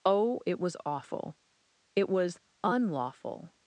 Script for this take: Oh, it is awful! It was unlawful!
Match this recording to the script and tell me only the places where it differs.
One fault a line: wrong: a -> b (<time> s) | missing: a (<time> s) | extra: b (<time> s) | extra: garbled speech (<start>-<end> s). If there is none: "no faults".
wrong: is -> was (0.6 s)